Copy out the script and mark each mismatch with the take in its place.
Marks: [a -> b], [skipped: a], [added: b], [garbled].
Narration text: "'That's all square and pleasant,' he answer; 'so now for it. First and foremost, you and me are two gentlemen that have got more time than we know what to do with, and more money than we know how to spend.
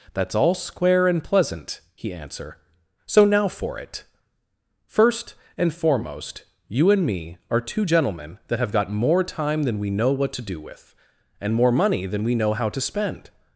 "'That's all square and pleasant,' he answer; 'so now for it. First and foremost, you and me are two gentlemen that have got more time than we know what to do with, and more money than we know how to spend.